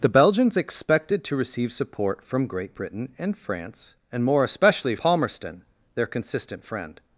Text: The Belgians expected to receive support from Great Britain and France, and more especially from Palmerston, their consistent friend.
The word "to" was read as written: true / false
true